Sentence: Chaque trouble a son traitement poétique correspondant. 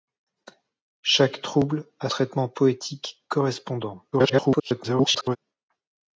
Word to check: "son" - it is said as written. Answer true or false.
false